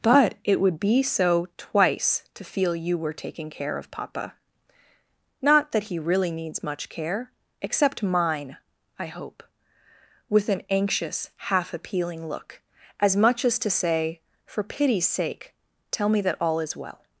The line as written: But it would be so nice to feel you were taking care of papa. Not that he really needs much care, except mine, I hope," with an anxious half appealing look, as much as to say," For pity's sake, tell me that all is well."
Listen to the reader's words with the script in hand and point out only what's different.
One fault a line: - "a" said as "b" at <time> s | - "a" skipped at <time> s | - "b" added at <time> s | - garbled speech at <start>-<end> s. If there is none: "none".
- "nice" said as "twice" at 1.6 s